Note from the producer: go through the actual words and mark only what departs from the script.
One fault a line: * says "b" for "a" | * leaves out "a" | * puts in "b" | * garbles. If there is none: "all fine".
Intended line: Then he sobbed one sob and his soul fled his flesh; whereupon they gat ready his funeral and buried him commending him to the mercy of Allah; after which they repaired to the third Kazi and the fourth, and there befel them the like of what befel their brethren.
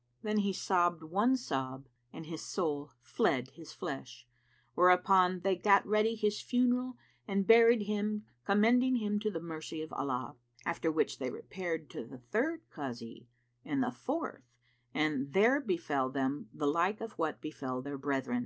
all fine